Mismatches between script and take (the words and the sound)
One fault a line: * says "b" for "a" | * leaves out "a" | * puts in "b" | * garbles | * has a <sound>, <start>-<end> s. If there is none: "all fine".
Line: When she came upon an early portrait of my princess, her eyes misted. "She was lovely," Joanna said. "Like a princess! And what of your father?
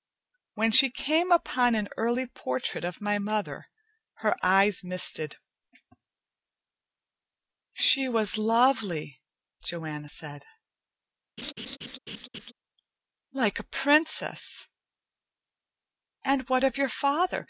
* says "mother" for "princess"
* has a laugh, 11.4-12.5 s